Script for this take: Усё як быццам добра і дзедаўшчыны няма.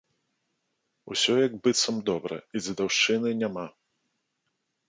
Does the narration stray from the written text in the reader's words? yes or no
no